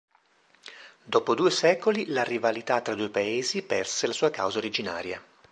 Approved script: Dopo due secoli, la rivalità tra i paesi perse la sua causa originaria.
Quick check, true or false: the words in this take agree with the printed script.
false